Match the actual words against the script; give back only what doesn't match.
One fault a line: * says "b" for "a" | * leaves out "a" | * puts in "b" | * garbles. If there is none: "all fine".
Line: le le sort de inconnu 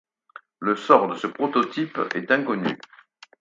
* leaves out "le"
* puts in "ce prototype est"